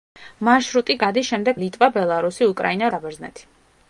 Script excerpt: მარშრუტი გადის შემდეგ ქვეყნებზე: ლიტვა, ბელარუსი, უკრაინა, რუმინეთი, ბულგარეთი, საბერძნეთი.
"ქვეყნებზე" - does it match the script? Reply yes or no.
no